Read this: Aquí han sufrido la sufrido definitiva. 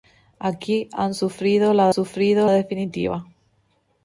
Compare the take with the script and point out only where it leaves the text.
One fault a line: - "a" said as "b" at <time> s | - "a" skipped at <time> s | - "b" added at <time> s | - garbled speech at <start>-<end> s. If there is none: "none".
none